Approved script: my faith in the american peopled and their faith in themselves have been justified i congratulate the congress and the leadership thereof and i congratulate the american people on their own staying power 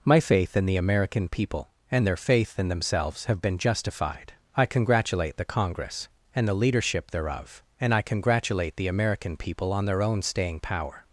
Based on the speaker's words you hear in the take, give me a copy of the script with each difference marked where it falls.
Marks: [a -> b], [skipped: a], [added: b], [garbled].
my faith in the american [peopled -> people] and their faith in themselves have been justified i congratulate the congress and the leadership thereof and i congratulate the american people on their own staying power